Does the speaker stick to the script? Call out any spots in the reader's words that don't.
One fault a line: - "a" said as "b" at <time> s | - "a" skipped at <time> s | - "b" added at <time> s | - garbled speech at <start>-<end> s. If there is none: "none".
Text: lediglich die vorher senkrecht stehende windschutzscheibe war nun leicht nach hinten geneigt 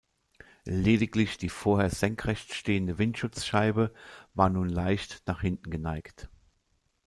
none